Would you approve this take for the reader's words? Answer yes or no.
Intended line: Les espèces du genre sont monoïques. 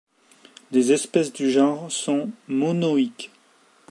yes